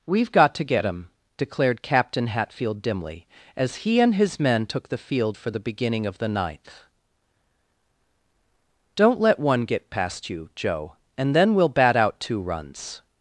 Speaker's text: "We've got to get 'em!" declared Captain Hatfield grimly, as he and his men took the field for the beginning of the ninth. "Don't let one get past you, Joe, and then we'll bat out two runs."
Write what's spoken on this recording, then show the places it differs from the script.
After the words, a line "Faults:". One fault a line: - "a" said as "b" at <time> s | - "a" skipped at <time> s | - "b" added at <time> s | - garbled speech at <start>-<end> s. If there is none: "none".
"We've got to get 'em!" declared Captain Hatfield dimly, as he and his men took the field for the beginning of the ninth. "Don't let one get past you, Joe, and then we'll bat out two runs."
Faults:
- "grimly" said as "dimly" at 2.8 s